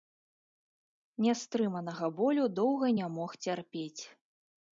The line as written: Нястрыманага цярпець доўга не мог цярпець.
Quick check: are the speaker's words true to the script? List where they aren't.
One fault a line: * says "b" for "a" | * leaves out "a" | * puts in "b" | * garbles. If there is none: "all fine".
* says "болю" for "цярпець"